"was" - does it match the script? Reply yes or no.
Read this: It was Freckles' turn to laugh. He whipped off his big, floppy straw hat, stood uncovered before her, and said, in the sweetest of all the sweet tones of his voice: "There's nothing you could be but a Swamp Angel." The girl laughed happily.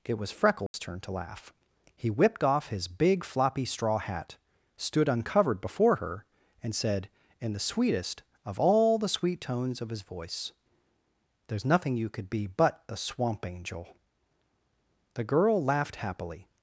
yes